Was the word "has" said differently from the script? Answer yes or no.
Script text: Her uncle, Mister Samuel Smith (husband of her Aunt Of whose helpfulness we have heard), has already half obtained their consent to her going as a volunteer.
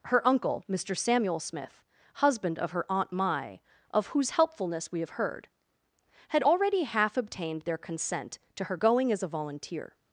yes